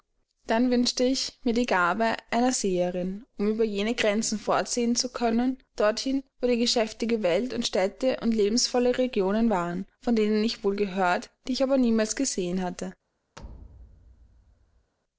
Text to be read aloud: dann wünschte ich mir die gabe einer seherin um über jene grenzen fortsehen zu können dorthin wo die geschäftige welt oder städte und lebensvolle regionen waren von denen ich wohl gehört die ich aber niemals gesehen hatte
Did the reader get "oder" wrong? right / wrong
wrong